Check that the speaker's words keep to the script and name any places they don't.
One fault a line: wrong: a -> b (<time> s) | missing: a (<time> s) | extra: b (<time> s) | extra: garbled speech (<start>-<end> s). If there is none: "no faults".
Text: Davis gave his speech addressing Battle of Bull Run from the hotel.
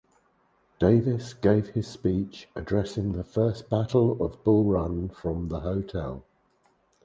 extra: the First (3.1 s)